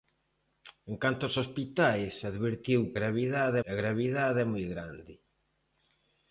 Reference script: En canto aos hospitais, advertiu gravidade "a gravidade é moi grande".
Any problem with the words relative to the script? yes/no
no